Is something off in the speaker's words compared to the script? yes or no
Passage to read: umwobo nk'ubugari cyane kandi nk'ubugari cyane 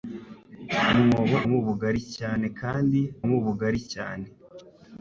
no